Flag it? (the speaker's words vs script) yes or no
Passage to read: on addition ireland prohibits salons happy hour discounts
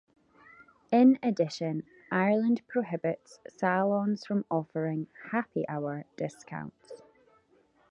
yes